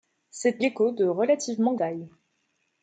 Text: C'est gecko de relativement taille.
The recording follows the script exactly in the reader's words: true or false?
true